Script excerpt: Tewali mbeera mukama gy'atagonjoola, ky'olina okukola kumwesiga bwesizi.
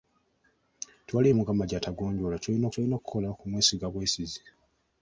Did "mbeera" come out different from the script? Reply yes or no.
yes